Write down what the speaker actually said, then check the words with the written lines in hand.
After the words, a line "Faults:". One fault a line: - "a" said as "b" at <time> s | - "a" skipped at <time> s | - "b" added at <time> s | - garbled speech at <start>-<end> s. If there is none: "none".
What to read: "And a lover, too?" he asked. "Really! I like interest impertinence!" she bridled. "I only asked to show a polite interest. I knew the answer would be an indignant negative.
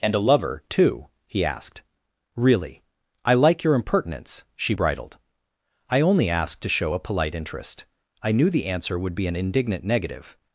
"And a lover, too?" he asked. "Really! I like your impertinence!" she bridled. "I only asked to show a polite interest. I knew the answer would be an indignant negative.
Faults:
- "interest" said as "your" at 3.6 s